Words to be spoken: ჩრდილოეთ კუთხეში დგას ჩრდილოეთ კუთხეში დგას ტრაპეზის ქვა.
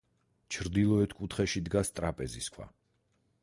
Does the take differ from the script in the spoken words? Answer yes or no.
yes